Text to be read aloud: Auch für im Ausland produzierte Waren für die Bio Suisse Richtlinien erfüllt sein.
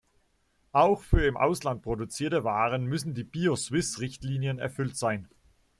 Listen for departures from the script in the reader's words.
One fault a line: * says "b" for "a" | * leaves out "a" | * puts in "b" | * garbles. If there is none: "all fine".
* says "müssen" for "für"